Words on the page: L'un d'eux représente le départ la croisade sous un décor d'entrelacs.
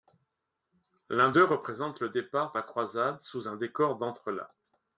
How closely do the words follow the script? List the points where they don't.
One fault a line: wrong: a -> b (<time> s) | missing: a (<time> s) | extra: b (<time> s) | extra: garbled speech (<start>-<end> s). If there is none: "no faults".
no faults